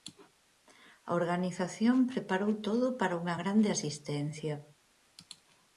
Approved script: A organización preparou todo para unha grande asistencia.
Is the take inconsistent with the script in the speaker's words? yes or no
no